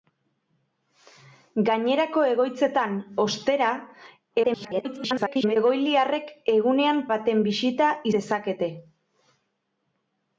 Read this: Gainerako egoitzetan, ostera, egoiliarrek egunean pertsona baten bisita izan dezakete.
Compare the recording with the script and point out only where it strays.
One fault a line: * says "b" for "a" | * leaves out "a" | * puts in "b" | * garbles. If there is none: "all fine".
* garbles
* leaves out "pertsona"
* leaves out "izan"